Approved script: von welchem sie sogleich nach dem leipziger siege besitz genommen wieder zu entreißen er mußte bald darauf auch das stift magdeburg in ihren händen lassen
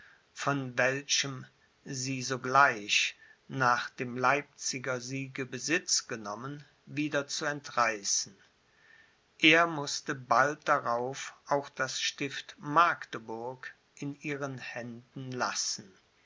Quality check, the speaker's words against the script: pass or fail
pass